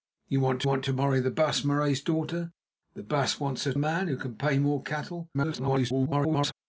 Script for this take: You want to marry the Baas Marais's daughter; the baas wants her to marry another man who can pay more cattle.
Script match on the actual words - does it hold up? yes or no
no